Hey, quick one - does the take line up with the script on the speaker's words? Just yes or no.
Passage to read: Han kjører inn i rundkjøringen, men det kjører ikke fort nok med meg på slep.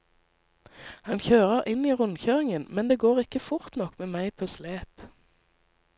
no